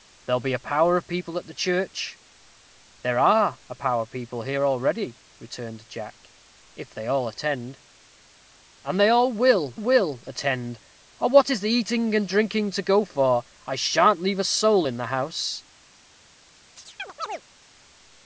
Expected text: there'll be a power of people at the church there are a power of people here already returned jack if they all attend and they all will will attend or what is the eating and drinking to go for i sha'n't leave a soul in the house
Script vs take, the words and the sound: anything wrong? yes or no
yes